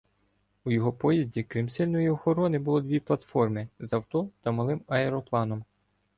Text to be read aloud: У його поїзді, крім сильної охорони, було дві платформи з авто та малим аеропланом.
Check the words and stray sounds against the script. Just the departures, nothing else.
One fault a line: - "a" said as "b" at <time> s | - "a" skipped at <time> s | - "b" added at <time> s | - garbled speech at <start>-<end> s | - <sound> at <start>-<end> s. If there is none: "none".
none